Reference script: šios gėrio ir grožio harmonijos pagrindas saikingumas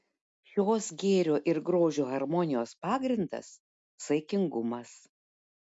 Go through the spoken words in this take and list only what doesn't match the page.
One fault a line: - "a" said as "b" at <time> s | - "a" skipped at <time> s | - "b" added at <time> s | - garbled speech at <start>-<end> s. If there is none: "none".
none